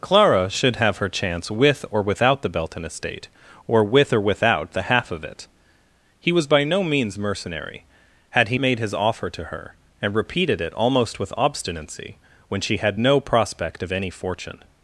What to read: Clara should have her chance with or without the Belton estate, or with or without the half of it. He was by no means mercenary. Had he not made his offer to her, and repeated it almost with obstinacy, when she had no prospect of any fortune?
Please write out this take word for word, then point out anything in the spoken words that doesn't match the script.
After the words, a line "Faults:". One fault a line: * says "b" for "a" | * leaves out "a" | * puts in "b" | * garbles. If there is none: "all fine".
Clara should have her chance with or without the Belton estate, or with or without the half of it. He was by no means mercenary. Had he made his offer to her, and repeated it almost with obstinacy, when she had no prospect of any fortune?
Faults:
* leaves out "not"